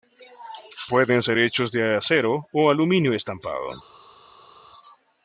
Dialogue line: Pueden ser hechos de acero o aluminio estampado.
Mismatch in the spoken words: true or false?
false